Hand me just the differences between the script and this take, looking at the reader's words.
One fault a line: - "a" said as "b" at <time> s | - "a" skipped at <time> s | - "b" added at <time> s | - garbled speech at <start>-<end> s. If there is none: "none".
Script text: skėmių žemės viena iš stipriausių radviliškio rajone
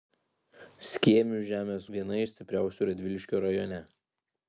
none